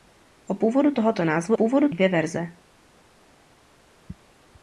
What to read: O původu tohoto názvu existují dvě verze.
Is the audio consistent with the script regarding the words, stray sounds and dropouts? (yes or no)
no